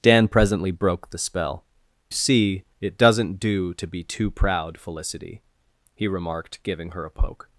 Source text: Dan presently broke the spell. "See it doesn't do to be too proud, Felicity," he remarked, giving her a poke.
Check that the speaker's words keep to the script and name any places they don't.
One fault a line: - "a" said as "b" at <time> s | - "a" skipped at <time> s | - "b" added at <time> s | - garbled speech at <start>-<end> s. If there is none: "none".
none